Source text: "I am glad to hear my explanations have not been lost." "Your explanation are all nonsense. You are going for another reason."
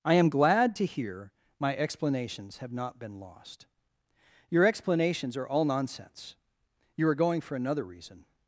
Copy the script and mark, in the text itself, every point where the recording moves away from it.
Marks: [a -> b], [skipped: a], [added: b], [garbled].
"I am glad to hear my explanations have not been lost." "Your [explanation -> explanations] are all nonsense. You are going for another reason."